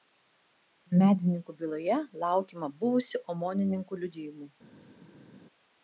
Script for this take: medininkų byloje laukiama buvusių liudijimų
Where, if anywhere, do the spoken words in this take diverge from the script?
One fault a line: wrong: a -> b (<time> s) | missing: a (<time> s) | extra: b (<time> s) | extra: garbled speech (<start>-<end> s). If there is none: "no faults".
extra: omonininkų (3.4 s)